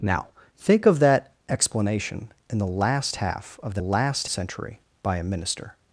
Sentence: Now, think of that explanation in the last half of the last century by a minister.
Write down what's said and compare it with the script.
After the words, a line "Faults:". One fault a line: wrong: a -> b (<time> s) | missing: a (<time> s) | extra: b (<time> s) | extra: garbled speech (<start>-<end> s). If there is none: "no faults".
Now, think of that explanation in the last half of the last century by a minister.
Faults:
no faults